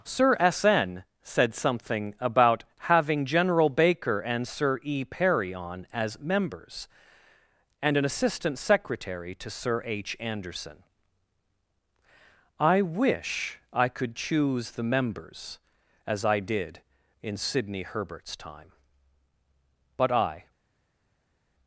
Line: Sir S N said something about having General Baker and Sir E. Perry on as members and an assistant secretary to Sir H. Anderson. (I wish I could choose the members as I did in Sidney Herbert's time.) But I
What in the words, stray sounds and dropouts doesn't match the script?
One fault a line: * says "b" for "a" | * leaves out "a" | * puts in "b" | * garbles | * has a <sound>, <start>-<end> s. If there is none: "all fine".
all fine